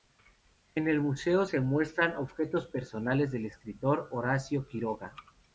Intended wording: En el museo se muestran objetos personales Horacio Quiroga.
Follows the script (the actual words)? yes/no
no